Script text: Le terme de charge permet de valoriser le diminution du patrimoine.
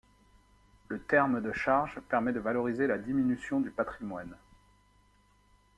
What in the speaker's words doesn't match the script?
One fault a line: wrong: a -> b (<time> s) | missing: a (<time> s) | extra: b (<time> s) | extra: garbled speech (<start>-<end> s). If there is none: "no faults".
wrong: le -> la (2.9 s)